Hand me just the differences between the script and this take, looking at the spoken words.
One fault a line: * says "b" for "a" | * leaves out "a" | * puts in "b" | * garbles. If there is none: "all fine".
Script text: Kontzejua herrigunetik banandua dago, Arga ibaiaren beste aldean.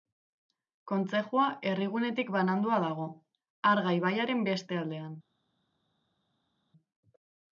all fine